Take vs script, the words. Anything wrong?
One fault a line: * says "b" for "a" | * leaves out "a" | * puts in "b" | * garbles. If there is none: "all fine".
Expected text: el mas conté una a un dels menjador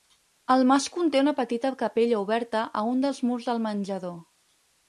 * puts in "petita capella oberta"
* puts in "murs del"